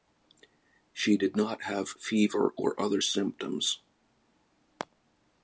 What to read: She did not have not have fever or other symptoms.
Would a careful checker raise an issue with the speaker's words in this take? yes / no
yes